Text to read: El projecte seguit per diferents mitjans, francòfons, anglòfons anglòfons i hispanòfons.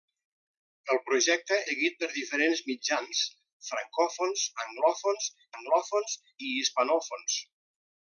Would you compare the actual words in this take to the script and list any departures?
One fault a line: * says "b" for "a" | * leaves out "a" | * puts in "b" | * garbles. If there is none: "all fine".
all fine